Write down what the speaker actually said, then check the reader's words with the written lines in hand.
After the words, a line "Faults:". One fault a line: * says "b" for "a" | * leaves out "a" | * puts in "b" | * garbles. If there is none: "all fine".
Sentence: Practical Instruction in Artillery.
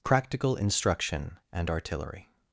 Practical Instruction and Artillery.
Faults:
* says "and" for "in"